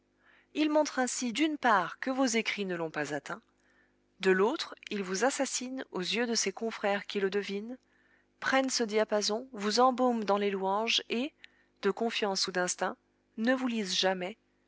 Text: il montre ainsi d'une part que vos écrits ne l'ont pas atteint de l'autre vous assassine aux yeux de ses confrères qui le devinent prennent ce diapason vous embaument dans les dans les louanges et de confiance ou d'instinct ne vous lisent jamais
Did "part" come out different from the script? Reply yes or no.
no